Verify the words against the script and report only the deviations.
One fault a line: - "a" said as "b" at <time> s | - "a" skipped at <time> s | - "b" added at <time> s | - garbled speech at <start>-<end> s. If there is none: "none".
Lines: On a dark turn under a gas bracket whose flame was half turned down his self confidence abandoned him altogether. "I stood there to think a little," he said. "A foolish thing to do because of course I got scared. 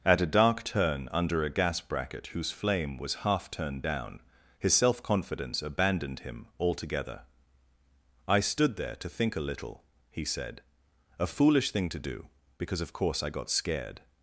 - "On" said as "At" at 0.0 s